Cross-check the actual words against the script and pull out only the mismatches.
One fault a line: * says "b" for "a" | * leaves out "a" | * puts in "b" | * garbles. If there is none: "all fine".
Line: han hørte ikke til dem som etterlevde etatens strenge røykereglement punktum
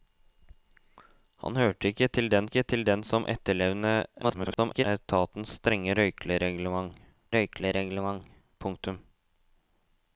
* puts in "ikke til dem"
* garbles
* puts in "røykereglement"